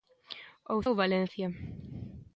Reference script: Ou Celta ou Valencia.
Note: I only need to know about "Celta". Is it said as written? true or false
false